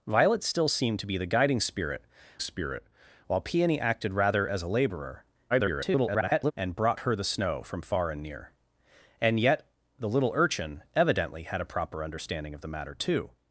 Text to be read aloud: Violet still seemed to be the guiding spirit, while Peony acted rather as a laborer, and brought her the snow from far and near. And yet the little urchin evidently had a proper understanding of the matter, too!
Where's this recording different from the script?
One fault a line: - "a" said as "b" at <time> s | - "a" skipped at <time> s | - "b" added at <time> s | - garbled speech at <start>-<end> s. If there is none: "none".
- "spirit" added at 2.4 s
- garbled speech at 5.5-6.5 s